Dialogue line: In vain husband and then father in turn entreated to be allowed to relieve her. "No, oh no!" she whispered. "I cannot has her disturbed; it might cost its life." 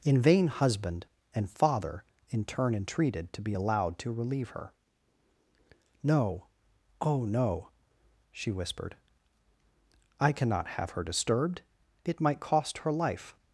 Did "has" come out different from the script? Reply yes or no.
yes